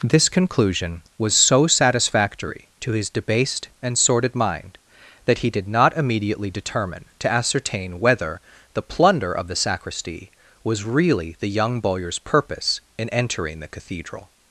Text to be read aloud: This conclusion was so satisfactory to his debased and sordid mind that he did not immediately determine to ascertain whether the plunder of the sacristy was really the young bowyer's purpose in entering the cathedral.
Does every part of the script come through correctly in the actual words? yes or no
yes